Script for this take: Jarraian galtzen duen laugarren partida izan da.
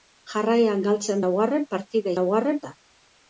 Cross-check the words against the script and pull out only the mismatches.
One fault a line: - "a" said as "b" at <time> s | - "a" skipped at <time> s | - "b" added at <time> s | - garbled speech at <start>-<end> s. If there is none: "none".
- "duen" skipped at 1.2 s
- "izan" said as "laugarren" at 2.2 s